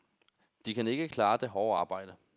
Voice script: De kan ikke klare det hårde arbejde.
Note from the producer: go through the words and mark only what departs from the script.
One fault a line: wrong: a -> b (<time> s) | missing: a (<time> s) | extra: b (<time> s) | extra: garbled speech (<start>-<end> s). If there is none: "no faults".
no faults